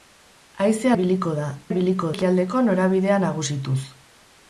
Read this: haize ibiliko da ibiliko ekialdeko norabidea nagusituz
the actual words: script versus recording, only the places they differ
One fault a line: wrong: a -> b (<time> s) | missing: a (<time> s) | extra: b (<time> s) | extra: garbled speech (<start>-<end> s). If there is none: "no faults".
no faults